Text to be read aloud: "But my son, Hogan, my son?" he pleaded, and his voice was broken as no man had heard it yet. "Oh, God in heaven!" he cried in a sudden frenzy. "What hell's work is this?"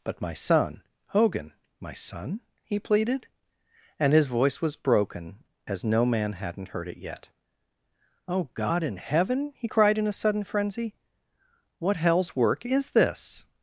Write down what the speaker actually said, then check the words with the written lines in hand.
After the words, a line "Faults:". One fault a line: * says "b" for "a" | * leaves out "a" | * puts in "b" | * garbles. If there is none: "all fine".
"But my son, Hogan, my son?" he pleaded, and his voice was broken as no man hadn't heard it yet. "Oh, God in heaven!" he cried in a sudden frenzy. "What hell's work is this?"
Faults:
* says "hadn't" for "had"